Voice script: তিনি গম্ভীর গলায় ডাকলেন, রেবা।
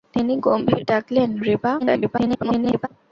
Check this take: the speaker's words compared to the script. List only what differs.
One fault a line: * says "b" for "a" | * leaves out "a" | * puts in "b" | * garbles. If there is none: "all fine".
* leaves out "গলায়"
* garbles